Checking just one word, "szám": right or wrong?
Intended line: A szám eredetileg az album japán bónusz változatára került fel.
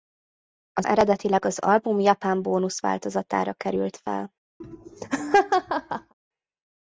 wrong